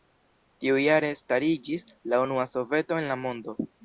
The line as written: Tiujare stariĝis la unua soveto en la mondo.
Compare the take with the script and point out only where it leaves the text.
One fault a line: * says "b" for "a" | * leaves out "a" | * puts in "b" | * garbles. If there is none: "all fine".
all fine